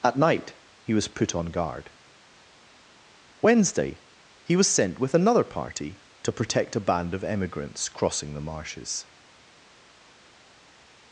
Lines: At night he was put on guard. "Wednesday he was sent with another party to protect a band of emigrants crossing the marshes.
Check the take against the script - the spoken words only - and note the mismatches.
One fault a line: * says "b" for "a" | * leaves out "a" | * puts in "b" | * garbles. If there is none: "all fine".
all fine